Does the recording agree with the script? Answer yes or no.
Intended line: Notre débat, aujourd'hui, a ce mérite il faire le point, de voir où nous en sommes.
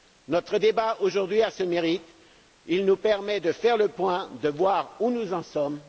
no